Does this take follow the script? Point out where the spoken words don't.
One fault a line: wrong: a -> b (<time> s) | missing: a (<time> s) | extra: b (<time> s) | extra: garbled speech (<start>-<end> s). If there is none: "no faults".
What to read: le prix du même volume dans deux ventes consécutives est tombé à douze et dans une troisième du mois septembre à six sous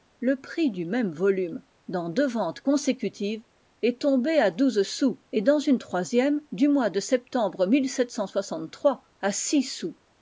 extra: sous (4.8 s)
extra: de (6.9 s)